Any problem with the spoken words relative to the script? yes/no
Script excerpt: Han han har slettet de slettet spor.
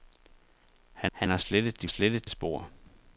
no